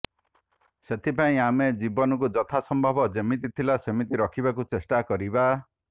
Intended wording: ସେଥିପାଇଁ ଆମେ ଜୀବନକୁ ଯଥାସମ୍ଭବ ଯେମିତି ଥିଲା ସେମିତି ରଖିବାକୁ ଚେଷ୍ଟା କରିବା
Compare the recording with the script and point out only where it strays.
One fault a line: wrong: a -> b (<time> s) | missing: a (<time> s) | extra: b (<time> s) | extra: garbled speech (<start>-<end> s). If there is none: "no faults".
no faults